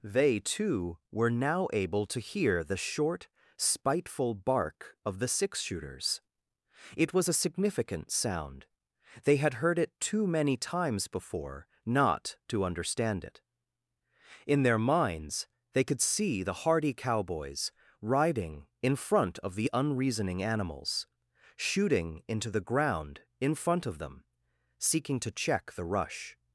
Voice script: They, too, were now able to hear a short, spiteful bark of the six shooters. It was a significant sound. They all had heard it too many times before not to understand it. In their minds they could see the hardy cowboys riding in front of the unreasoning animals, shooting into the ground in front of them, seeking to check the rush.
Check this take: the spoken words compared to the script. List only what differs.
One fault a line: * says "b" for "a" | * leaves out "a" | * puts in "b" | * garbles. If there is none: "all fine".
* says "the" for "a"
* leaves out "all"